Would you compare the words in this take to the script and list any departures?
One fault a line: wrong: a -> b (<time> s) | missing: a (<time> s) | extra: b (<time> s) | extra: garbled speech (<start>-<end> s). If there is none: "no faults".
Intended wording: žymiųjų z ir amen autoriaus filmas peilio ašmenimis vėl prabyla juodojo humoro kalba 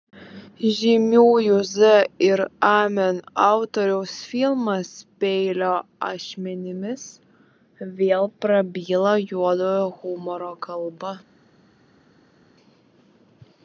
no faults